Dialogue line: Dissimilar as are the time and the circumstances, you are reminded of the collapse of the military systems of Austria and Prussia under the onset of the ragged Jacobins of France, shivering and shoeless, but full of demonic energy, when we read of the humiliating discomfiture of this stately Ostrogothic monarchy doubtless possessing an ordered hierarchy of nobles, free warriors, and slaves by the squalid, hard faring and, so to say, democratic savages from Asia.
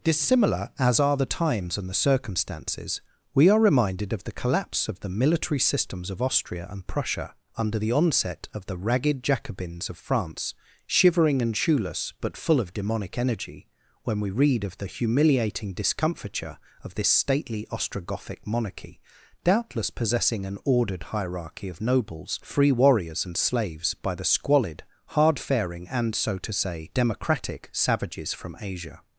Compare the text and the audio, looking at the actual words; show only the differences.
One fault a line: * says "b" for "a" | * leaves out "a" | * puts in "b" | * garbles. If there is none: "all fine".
* says "times" for "time"
* says "we" for "you"